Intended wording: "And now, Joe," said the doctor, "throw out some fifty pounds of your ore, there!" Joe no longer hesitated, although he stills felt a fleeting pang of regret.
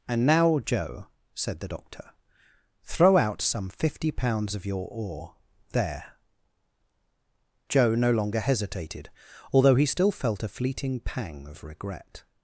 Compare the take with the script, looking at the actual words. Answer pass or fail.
fail